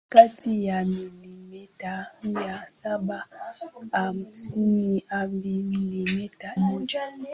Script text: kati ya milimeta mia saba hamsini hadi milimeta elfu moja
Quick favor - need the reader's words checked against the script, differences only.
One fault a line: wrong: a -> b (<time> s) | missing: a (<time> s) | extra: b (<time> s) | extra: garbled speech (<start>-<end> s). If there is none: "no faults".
missing: elfu (6.6 s)